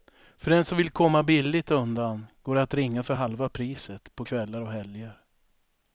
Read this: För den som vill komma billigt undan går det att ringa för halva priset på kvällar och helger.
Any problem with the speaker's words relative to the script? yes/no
no